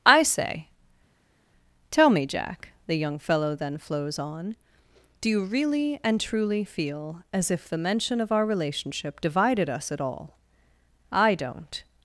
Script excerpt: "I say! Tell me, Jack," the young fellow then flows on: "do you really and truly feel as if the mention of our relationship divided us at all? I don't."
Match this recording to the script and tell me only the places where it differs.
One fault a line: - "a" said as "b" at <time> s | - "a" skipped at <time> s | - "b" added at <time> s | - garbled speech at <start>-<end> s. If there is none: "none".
none